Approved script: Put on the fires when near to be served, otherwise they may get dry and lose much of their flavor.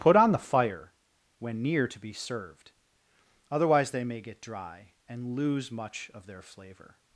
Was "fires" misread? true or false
true